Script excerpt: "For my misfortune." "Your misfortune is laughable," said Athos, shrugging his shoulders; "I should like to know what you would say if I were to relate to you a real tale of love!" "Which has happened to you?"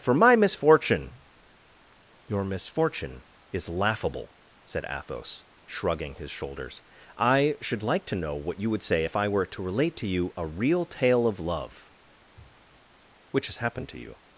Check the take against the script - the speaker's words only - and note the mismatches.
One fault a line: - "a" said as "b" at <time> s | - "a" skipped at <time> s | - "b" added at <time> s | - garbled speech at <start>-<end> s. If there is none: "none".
none